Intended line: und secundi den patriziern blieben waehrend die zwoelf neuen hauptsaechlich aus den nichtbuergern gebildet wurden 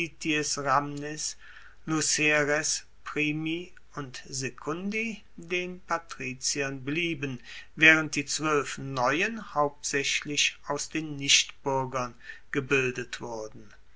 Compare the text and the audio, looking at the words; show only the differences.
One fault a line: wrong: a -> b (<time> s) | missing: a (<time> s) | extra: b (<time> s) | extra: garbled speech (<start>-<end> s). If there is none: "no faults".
no faults